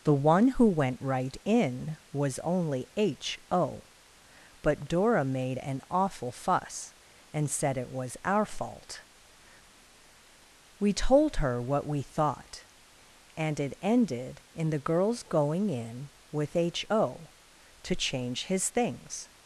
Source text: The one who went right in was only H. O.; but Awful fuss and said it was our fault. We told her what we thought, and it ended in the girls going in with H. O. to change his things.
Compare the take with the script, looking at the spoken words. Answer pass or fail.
fail